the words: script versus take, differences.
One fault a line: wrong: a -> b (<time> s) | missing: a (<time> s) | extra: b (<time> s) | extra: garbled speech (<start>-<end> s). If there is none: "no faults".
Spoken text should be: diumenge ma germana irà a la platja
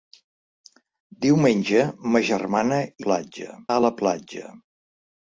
wrong: irà -> platja (3.1 s)